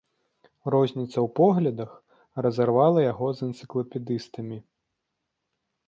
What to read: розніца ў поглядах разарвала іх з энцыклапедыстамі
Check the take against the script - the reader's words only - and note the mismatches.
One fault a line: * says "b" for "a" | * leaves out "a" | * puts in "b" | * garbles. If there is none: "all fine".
* says "яго" for "іх"